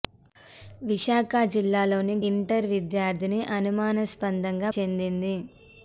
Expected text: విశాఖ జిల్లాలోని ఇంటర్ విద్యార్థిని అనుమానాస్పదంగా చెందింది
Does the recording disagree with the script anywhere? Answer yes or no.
no